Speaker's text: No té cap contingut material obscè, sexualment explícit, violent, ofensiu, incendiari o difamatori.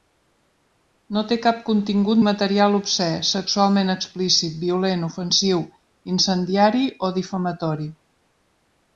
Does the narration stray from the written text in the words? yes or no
no